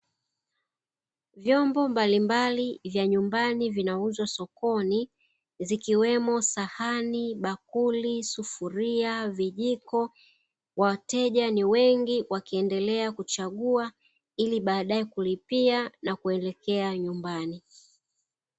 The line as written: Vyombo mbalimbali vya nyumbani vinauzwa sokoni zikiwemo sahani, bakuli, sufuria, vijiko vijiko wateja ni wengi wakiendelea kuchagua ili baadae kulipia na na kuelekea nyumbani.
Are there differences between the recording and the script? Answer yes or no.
yes